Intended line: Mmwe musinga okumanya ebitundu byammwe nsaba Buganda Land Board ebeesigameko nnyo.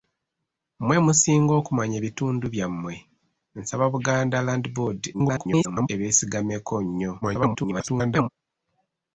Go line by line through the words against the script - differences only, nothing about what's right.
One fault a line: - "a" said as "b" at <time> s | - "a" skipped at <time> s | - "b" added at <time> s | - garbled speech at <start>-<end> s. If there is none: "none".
- garbled speech at 5.1-5.9 s
- garbled speech at 7.2-8.3 s